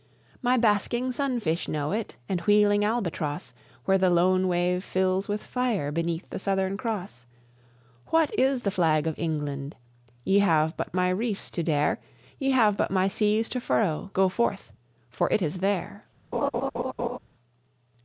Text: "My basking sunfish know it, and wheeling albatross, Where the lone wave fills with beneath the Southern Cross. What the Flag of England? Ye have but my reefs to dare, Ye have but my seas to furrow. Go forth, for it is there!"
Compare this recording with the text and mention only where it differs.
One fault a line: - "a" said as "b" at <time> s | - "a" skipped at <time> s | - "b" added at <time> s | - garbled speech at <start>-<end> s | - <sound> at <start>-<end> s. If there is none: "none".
- "fire" added at 5.4 s
- "is" added at 8.3 s
- laugh at 16.3-17.2 s